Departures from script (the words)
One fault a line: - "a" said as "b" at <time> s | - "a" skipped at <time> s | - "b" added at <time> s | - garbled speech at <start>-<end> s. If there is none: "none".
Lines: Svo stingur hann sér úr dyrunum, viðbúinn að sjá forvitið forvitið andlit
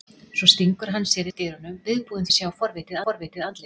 none